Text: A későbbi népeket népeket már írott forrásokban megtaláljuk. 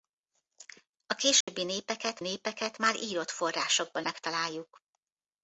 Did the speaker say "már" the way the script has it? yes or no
yes